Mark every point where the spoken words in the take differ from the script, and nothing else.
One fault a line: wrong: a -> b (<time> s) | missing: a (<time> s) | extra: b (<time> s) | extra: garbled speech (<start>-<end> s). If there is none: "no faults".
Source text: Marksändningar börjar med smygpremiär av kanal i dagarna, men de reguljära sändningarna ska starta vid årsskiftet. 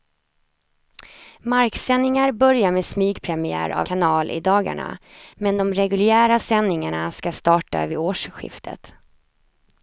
no faults